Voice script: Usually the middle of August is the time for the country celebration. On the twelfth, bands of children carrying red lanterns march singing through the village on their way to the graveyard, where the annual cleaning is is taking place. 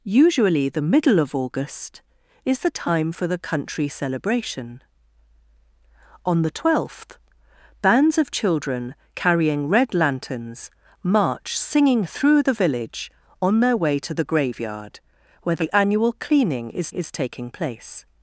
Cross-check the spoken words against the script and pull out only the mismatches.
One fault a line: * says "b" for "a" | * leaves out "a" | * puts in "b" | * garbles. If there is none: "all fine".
all fine